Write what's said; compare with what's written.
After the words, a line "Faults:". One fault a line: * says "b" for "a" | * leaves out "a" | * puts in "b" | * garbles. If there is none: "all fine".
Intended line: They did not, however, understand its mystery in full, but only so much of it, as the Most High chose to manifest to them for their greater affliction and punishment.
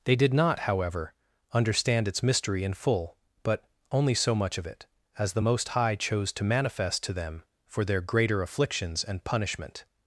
They did not, however, understand its mystery in full, but only so much of it, as the Most High chose to manifest to them for their greater afflictions and punishment.
Faults:
* says "afflictions" for "affliction"